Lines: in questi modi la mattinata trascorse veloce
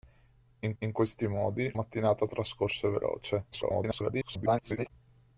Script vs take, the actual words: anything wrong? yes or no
yes